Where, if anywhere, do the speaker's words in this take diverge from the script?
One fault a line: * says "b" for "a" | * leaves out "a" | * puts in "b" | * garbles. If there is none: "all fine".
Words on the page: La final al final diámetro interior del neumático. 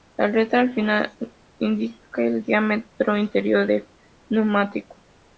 * says "letra" for "final"
* puts in "indica el"